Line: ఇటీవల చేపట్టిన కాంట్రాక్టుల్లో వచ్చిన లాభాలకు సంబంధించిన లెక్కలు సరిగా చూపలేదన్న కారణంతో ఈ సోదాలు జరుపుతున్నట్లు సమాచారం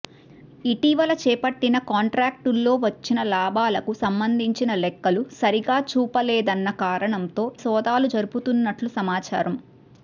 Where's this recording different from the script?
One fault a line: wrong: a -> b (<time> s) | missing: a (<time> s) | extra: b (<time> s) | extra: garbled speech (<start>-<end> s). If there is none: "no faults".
missing: ఈ (7.5 s)